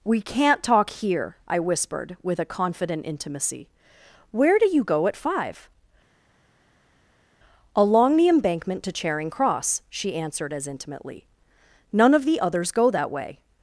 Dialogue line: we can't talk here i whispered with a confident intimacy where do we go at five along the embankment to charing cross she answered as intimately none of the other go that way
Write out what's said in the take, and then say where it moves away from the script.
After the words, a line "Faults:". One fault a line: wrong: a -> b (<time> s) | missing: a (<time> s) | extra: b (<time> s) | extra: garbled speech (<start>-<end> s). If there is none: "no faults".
we can't talk here i whispered with a confident intimacy where do you go at five along the embankment to charing cross she answered as intimately none of the others go that way
Faults:
wrong: we -> you (4.7 s)
wrong: other -> others (12.4 s)